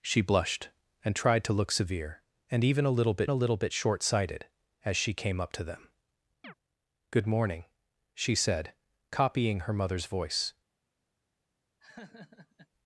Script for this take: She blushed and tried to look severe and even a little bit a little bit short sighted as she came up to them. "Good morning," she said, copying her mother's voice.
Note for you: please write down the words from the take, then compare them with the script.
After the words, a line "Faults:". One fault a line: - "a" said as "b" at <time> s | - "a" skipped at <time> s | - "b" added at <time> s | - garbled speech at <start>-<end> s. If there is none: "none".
She blushed and tried to look severe and even a little bit a little bit short sighted as she came up to them. "Good morning," she said, copying her mother's voice.
Faults:
none